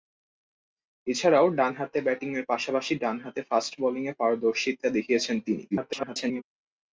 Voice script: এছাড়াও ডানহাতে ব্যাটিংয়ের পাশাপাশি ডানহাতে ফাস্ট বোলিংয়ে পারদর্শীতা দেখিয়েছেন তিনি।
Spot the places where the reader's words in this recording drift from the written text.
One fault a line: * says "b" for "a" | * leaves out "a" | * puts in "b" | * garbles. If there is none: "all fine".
* garbles